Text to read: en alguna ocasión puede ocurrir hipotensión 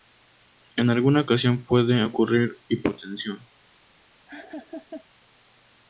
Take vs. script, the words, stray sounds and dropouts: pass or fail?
fail